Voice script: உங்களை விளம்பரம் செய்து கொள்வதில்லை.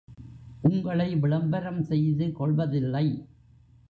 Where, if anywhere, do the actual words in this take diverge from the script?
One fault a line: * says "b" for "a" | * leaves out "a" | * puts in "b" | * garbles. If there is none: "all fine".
all fine